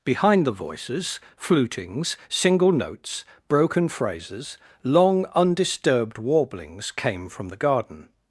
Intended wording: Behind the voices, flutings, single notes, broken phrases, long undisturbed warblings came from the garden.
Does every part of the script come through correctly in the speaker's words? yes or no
yes